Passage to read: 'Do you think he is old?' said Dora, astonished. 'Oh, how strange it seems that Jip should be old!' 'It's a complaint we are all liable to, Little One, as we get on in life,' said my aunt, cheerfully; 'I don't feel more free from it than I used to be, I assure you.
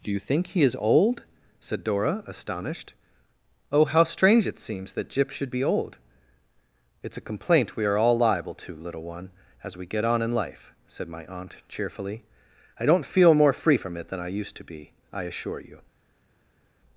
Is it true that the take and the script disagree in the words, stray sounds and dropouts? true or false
false